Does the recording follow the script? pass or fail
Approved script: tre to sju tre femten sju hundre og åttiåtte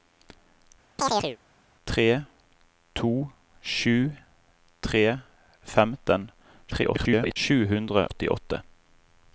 fail